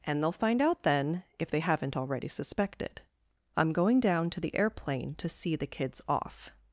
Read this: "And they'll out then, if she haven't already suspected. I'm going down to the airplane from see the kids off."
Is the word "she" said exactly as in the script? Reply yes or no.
no